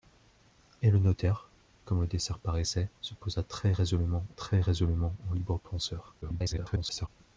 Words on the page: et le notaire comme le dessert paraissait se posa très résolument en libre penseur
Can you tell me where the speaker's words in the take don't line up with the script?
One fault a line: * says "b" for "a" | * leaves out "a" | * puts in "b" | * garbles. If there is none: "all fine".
* puts in "très résolument"
* garbles